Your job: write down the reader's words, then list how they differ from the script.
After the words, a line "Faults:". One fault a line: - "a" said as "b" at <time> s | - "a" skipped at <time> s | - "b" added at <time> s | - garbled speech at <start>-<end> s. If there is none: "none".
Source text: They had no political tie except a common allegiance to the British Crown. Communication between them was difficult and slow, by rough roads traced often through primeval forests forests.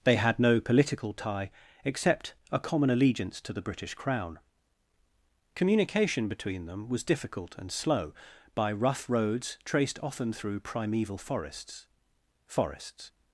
They had no political tie except a common allegiance to the British Crown. Communication between them was difficult and slow, by rough roads traced often through primeval forests forests.
Faults:
none